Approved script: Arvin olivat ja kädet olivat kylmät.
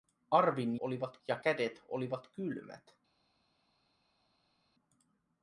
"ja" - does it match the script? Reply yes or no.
yes